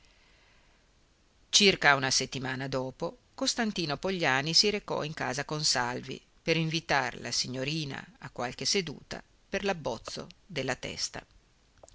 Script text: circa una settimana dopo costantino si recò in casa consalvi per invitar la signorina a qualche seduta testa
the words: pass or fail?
fail